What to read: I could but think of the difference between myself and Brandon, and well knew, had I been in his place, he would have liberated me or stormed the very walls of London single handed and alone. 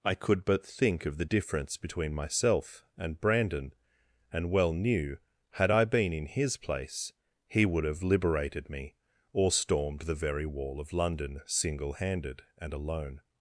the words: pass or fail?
fail